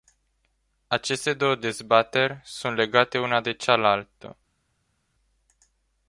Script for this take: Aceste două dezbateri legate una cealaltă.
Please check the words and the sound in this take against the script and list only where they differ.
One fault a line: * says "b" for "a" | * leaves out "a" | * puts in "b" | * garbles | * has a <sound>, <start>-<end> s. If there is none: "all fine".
* puts in "sunt"
* puts in "de"